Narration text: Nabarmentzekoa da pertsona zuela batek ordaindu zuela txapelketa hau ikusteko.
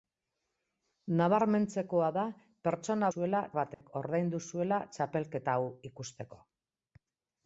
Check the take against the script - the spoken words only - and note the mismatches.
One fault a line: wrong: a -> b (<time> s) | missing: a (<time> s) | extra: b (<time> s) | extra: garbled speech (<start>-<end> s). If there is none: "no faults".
no faults